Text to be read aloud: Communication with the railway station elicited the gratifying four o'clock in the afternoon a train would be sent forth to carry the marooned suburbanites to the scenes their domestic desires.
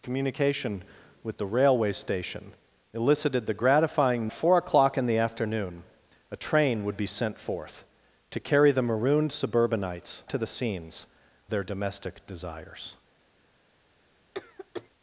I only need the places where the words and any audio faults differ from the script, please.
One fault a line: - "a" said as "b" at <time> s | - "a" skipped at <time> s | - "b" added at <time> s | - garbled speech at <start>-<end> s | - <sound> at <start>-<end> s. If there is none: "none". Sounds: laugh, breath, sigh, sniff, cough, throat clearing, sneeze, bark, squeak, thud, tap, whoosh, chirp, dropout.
- cough at 14.3-14.9 s